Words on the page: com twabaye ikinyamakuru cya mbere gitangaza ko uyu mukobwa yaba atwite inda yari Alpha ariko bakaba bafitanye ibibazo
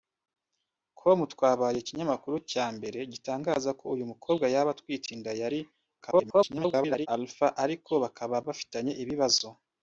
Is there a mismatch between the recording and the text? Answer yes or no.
yes